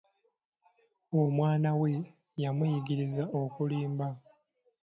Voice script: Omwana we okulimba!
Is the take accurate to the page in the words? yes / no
no